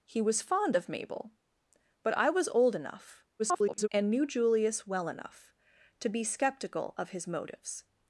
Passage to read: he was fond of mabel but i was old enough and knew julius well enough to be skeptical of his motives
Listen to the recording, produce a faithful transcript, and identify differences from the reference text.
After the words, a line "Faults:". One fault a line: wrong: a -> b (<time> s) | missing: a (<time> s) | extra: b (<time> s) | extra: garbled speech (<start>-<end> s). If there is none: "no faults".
he was fond of mabel but i was old enough [garbled] and knew julius well enough to be skeptical of his motives
Faults:
extra: garbled speech (3.4-3.9 s)